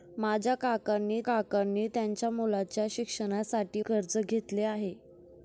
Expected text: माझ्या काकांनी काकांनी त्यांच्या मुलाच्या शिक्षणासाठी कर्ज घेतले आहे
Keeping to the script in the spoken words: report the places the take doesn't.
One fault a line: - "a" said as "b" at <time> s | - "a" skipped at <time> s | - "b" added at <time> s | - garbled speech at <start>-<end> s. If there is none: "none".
none